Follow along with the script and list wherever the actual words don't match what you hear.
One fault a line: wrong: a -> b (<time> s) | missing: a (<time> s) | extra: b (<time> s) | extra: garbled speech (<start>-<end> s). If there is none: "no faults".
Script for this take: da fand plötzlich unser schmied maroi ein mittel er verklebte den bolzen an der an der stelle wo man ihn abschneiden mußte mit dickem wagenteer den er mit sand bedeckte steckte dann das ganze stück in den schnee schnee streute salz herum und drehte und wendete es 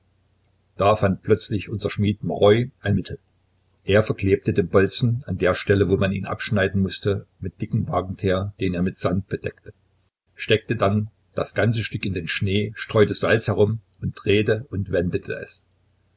missing: an der (5.5 s)
missing: schnee (12.7 s)